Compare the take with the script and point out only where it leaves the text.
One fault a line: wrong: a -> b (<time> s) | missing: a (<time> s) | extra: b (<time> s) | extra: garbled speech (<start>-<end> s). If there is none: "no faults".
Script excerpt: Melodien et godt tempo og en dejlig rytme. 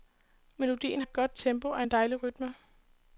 no faults